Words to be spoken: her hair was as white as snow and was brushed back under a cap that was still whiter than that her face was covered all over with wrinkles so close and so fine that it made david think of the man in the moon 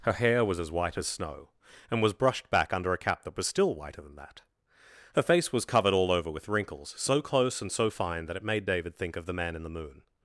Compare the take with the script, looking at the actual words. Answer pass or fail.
pass